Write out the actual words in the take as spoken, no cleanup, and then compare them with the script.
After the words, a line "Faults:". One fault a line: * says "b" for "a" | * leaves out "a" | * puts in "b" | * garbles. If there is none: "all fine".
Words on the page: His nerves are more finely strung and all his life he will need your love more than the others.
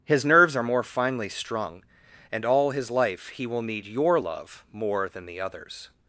His nerves are more finely strung and all his life he will need your love more than the others.
Faults:
all fine